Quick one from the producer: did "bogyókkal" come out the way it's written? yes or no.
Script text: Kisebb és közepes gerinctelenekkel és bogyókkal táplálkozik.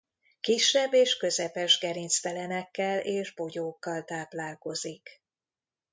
yes